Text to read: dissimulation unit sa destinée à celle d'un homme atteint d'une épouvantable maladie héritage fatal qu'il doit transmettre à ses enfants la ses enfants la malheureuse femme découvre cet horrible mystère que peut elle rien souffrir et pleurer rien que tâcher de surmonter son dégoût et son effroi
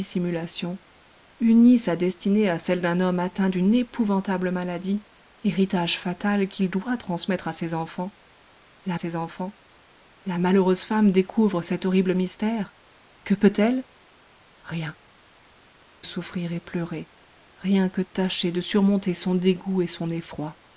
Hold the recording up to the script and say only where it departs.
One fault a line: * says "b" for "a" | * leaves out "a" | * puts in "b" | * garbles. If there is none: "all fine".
all fine